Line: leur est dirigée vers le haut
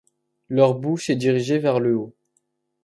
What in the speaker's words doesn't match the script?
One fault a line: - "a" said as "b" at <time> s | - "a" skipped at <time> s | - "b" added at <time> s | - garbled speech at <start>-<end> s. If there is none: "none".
- "bouche" added at 0.7 s